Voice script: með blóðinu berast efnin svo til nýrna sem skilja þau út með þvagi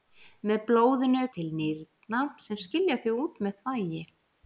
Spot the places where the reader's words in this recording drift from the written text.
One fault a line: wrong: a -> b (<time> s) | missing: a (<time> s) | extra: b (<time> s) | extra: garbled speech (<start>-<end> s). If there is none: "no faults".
missing: berast efnin svo (1.2 s)